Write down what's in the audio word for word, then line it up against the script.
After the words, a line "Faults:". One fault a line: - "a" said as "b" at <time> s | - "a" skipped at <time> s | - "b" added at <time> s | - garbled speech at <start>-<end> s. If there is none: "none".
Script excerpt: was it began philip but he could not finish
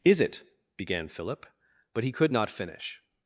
is it began philip but he could not finish
Faults:
- "was" said as "is" at 0.0 s